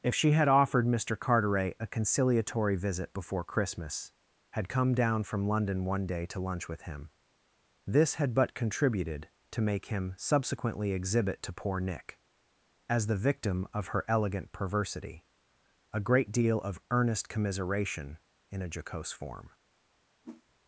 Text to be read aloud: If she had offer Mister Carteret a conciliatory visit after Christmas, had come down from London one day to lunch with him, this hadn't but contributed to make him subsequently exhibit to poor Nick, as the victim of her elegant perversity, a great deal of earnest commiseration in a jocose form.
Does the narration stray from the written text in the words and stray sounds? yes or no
yes